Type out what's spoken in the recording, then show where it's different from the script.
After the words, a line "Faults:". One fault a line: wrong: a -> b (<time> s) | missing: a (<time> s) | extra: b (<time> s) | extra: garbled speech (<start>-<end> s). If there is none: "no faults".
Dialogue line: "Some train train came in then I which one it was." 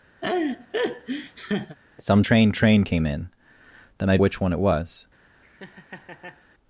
"Some train train came in then I which one it was."
Faults:
no faults